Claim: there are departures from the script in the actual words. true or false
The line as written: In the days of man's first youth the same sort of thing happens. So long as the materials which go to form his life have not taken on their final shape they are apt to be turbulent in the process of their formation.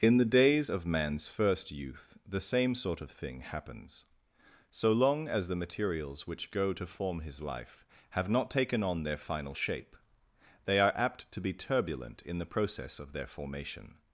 false